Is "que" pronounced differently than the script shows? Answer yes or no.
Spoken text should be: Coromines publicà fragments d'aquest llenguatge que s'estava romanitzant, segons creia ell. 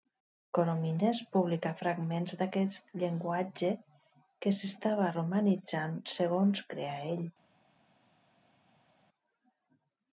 no